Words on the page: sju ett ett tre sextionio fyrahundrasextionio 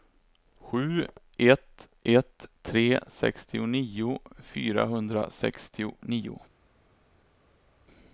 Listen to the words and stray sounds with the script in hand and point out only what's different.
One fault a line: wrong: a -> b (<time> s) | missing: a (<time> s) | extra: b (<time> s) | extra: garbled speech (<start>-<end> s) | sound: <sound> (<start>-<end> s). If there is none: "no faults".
no faults